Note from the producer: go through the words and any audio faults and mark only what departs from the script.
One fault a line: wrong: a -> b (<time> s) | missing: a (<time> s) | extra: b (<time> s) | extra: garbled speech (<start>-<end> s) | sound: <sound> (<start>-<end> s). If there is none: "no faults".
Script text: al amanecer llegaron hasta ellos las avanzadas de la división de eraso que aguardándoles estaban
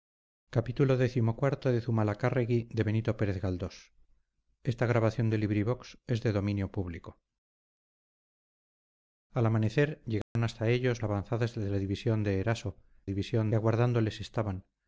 sound: dropout (10.2-10.4 s)
missing: las (11.0 s)
wrong: que -> división (13.0 s)